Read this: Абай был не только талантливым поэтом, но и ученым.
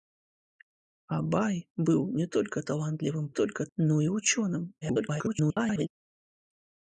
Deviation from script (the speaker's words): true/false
true